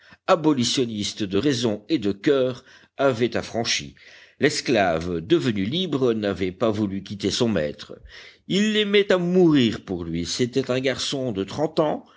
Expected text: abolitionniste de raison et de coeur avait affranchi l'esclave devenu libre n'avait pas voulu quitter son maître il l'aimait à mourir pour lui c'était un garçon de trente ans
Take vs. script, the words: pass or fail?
pass